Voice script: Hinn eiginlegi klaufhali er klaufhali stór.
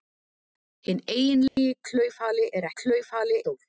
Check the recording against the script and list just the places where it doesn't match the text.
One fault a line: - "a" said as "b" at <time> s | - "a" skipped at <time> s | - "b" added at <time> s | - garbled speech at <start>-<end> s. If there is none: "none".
none